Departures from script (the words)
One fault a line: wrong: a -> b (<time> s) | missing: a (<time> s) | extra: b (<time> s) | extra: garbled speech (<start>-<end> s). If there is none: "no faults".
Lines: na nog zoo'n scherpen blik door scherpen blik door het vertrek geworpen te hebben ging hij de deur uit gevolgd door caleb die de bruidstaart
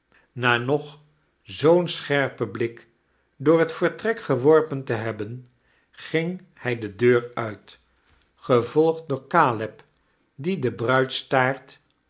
missing: scherpen blik door (3.6 s)